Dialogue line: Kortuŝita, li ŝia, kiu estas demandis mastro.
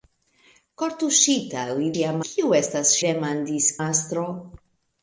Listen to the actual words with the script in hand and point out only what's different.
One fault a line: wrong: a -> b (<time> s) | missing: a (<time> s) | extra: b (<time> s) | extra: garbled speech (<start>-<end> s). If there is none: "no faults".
no faults